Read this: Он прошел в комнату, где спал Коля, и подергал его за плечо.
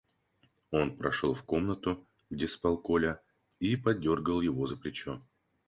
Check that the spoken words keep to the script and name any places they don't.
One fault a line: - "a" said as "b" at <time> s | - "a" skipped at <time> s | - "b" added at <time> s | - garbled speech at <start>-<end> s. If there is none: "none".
none